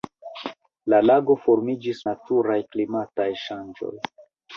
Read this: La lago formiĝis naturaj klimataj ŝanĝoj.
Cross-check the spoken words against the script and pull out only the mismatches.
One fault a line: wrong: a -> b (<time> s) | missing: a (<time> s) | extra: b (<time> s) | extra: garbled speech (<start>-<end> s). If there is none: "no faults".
no faults